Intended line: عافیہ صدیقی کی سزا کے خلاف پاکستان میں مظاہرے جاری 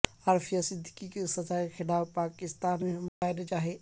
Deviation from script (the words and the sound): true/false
true